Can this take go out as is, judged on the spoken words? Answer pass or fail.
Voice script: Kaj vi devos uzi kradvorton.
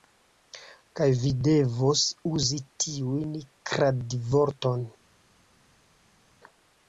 fail